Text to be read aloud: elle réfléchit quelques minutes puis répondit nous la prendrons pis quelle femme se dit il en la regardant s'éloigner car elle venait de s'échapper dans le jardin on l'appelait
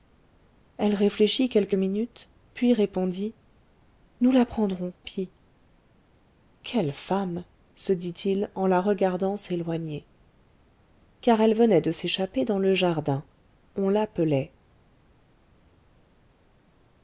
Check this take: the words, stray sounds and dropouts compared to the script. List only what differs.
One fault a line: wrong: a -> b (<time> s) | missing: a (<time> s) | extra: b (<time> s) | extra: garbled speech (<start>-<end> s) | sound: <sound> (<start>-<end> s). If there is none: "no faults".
no faults